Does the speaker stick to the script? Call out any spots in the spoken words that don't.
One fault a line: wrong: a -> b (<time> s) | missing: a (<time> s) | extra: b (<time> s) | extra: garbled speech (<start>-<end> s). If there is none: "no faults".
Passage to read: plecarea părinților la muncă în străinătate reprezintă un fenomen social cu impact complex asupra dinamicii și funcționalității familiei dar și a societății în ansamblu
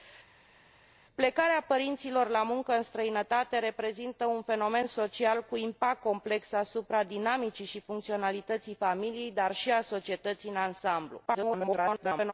extra: garbled speech (11.3-12.3 s)